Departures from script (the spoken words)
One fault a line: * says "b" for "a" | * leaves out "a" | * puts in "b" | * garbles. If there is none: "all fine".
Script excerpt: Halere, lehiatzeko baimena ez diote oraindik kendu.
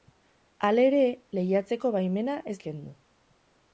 * leaves out "diote oraindik"